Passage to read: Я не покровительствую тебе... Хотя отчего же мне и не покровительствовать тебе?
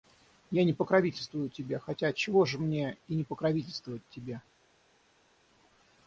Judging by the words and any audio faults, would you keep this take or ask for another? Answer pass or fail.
pass